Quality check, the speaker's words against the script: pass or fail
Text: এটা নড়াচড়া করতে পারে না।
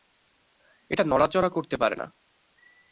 pass